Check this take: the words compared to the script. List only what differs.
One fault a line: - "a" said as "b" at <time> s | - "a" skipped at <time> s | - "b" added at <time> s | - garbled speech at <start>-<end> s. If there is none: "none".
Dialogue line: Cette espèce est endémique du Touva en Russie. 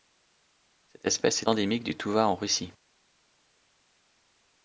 - "est" skipped at 1.4 s